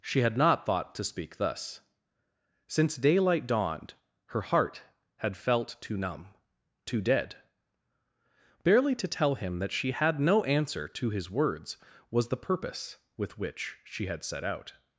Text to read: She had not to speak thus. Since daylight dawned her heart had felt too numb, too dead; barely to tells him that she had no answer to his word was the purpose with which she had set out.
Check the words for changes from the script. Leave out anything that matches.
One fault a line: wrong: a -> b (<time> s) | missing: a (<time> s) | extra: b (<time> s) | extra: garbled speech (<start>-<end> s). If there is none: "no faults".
extra: thought (0.7 s)
wrong: tells -> tell (9.1 s)
wrong: word -> words (11.3 s)